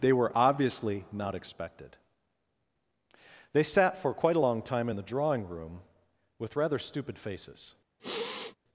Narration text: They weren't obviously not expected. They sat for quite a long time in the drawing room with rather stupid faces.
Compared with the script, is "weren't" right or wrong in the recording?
wrong